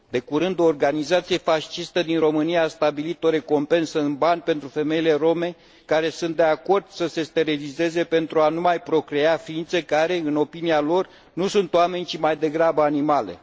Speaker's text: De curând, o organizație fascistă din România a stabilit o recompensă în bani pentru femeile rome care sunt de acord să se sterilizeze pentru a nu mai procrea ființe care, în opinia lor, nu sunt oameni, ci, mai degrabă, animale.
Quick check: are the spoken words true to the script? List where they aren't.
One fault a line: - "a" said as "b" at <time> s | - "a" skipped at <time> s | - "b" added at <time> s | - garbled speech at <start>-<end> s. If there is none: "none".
none